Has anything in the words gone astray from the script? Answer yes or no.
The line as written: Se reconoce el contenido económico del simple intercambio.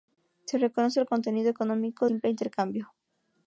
yes